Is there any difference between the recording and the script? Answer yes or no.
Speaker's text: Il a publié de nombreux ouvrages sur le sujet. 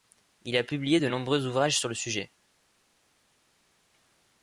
no